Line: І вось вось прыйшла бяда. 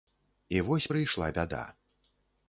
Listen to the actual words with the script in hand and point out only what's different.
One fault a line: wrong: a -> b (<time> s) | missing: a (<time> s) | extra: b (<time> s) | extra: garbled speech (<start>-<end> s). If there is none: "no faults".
missing: вось (0.9 s)